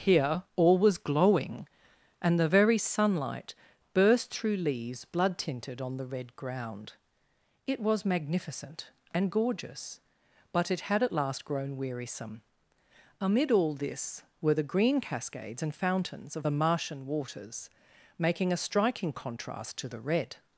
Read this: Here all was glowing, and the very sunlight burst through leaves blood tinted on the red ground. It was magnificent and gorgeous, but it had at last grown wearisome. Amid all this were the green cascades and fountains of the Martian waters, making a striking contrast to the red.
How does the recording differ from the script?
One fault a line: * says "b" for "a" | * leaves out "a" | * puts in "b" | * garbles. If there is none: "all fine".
all fine